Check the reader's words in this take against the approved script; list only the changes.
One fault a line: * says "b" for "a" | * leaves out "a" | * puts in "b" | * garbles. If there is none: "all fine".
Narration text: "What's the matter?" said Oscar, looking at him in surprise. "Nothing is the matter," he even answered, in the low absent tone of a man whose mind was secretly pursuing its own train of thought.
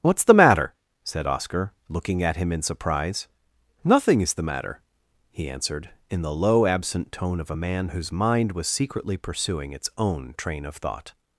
* leaves out "even"